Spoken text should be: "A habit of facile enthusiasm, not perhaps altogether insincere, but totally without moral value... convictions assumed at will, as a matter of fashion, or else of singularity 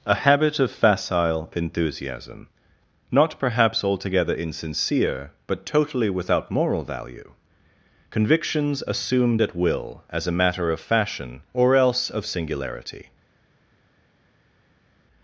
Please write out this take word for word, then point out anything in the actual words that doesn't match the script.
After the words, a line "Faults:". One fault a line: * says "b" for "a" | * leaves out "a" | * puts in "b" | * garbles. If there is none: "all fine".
"A habit of facile enthusiasm, not perhaps altogether insincere, but totally without moral value... convictions assumed at will, as a matter of fashion, or else of singularity
Faults:
all fine